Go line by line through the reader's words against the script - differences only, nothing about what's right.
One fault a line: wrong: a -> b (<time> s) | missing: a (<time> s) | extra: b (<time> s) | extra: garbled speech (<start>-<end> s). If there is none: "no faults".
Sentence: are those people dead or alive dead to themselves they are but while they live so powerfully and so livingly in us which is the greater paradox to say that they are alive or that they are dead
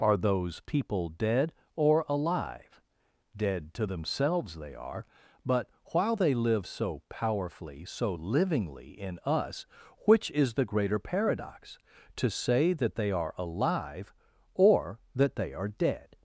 missing: and (7.8 s)